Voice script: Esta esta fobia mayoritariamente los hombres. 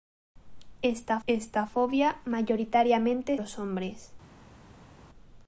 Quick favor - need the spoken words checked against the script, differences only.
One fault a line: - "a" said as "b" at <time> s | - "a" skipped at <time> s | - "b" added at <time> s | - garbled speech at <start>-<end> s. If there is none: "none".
none